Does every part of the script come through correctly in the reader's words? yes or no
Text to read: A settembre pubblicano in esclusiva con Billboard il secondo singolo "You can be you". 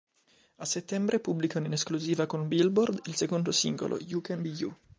yes